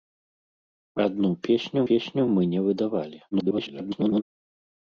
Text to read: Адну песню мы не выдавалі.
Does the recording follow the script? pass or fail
fail